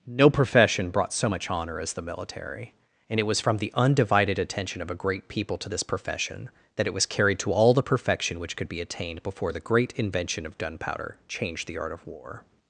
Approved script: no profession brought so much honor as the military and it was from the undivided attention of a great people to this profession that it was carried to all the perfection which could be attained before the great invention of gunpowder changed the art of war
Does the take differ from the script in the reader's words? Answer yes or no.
no